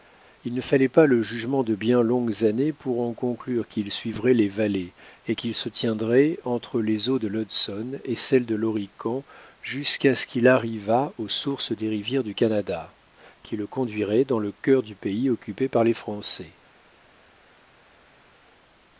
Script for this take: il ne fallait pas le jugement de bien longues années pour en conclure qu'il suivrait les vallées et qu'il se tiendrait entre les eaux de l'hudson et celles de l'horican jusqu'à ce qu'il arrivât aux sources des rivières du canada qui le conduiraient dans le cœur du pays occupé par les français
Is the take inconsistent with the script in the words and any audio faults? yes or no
no